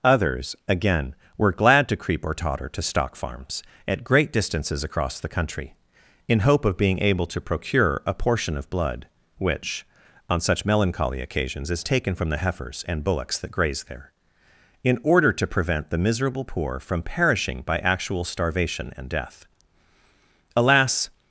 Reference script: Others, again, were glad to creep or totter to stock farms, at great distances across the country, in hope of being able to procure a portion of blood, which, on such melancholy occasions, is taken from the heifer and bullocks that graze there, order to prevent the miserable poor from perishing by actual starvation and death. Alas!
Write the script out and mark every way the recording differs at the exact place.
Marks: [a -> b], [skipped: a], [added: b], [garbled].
Others, again, were glad to creep or totter to stock farms, at great distances across the country, in hope of being able to procure a portion of blood, which, on such melancholy occasions, is taken from the [heifer -> heifers] and bullocks that graze there, [added: in] order to prevent the miserable poor from perishing by actual starvation and death. Alas!